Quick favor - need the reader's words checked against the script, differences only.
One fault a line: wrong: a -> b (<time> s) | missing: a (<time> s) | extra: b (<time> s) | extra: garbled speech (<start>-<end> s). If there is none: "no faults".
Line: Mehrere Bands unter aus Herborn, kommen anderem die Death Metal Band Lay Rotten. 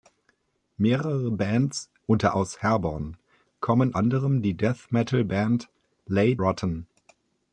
no faults